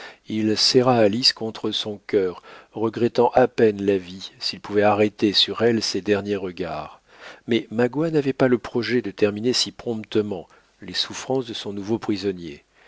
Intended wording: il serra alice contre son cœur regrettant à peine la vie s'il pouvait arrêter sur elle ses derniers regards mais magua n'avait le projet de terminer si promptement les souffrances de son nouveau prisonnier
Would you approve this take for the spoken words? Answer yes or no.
no